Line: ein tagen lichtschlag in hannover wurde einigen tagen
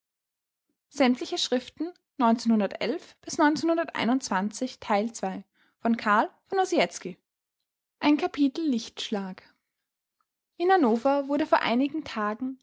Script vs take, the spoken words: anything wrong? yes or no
yes